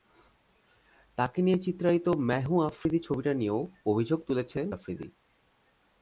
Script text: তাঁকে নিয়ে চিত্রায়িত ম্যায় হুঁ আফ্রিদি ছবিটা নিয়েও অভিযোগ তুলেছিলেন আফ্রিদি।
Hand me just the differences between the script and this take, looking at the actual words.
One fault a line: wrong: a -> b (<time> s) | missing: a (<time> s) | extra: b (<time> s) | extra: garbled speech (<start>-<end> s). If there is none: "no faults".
no faults